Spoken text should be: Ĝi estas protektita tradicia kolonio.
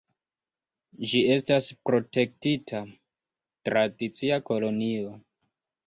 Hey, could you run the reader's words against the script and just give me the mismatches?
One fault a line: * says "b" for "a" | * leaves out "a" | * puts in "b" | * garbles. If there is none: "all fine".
all fine